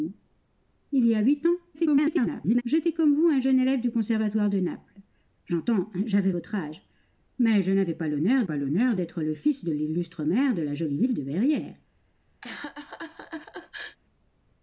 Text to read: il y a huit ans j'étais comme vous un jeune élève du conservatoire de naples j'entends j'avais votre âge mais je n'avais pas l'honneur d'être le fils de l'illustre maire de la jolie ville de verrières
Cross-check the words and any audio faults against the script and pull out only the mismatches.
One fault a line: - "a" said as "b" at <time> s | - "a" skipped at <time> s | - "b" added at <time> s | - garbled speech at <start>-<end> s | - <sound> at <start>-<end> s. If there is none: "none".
- garbled speech at 1.7-2.6 s
- "pas l'honneur" added at 8.4 s
- laugh at 12.4-14.0 s